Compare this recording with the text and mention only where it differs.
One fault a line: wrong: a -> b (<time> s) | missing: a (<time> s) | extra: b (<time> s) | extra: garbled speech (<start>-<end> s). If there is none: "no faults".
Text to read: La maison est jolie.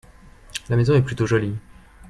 extra: plutôt (1.0 s)